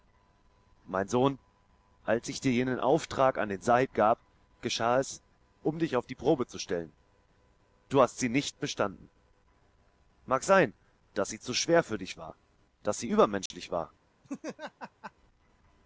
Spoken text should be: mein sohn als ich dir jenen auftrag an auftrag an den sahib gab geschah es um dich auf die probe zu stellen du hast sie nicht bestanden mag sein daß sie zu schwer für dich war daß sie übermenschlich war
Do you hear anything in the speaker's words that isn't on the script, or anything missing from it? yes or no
yes